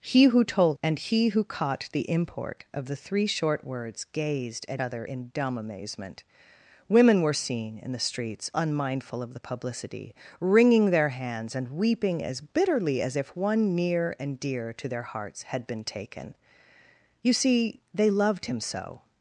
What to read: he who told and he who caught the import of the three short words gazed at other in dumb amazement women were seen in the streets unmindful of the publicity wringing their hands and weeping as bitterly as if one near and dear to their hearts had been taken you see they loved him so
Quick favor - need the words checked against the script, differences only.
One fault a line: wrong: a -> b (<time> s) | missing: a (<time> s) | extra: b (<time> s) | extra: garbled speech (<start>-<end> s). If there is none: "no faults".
no faults